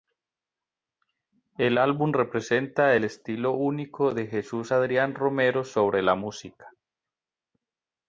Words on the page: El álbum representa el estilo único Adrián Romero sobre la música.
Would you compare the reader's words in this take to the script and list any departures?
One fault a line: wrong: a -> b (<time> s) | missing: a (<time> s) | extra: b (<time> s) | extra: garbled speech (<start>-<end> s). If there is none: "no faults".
extra: de Jesús (4.1 s)